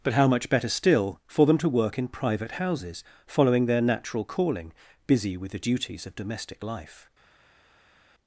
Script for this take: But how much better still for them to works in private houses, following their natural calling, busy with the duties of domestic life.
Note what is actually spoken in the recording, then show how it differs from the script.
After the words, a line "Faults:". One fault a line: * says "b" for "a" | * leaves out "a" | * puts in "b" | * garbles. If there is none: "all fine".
But how much better still for them to work in private houses, following their natural calling, busy with the duties of domestic life.
Faults:
* says "work" for "works"